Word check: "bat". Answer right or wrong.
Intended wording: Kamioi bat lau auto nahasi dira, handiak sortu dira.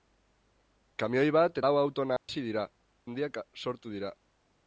right